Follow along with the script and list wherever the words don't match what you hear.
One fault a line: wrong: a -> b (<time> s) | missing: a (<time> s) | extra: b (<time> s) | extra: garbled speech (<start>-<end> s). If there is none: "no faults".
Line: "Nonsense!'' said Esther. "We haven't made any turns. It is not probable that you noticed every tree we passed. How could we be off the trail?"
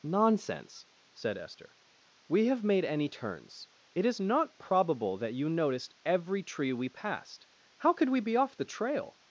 wrong: haven't -> have (2.5 s)